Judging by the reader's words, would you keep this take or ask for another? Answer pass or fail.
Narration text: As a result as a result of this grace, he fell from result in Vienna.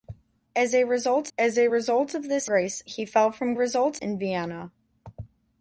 pass